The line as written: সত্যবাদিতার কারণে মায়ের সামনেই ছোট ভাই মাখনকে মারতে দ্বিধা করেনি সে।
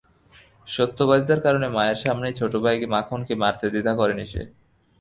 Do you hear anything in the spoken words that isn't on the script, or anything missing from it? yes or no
no